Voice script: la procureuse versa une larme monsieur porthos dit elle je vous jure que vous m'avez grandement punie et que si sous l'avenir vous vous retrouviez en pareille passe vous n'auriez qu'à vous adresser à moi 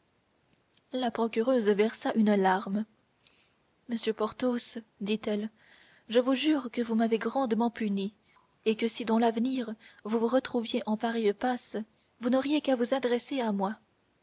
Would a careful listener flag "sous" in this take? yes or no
yes